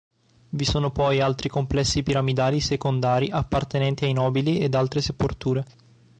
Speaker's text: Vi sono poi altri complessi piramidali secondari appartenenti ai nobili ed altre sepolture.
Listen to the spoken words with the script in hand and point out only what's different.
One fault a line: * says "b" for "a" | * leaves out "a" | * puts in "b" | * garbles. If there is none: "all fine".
all fine